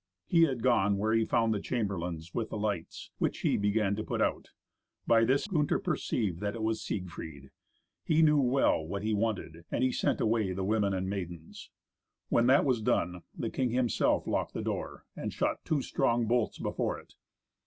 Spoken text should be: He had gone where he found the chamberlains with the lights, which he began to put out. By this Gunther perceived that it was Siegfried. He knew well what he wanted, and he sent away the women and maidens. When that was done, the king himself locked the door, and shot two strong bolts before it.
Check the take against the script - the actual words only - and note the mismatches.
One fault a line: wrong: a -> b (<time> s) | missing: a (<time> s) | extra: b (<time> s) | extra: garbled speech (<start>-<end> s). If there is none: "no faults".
no faults